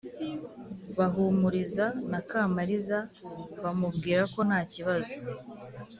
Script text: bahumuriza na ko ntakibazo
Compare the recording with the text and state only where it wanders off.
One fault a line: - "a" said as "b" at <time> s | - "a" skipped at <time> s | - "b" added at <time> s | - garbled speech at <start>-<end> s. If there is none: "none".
- "kamariza bamubwira" added at 2.3 s